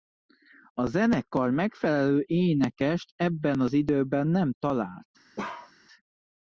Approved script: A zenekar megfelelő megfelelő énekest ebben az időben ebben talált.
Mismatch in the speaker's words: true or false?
true